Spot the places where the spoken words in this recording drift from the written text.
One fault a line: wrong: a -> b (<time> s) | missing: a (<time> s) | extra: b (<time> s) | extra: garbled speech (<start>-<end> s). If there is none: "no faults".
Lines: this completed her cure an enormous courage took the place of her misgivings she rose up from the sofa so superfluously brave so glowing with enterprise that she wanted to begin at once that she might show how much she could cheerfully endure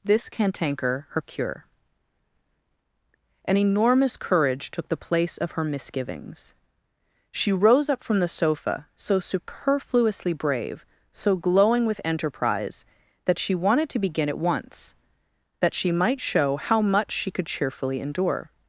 wrong: completed -> cantanker (0.3 s)